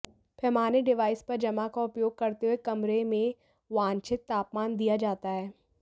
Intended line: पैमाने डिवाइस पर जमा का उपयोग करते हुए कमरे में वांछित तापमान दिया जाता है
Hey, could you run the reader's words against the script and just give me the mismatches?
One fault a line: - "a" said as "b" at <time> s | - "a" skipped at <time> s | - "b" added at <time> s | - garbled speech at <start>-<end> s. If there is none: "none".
none